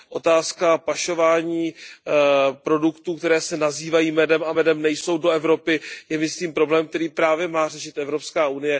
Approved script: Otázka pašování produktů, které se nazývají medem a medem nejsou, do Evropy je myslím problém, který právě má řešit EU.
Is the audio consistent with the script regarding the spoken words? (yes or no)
yes